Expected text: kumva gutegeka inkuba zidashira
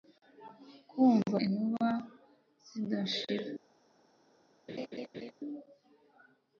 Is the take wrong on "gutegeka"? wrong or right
wrong